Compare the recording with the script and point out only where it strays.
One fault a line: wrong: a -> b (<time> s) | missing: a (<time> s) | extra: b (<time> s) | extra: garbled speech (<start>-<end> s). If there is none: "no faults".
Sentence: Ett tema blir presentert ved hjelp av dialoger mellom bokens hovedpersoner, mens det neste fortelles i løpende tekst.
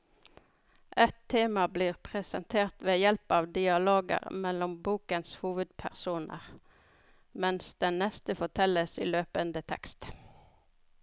no faults